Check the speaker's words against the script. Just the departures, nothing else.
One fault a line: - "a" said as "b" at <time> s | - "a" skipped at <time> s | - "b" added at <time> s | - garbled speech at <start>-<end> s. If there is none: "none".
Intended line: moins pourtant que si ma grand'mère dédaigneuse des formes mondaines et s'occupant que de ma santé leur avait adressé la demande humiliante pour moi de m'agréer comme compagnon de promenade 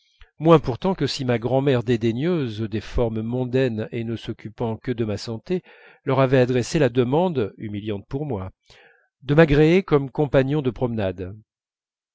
- "ne" added at 4.0 s